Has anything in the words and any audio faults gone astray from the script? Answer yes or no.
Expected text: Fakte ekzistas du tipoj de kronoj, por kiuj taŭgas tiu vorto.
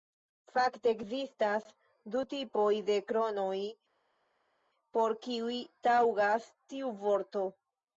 no